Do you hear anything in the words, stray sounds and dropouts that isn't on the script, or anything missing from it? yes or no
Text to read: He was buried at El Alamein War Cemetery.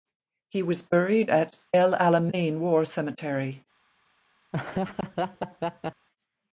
yes